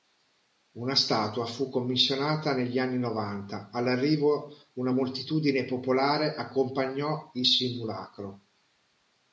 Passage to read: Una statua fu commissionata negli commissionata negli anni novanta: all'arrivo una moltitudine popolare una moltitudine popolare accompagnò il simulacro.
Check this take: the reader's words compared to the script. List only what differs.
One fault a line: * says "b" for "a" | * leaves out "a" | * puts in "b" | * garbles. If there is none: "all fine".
* leaves out "commissionata negli"
* leaves out "una moltitudine popolare"